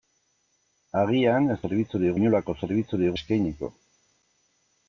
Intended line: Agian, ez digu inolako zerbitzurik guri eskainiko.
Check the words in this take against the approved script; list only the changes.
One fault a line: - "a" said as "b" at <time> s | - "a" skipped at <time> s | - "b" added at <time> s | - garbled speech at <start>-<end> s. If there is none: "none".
- "digu" said as "zerbitzurik" at 1.6 s
- "guri" skipped at 3.2 s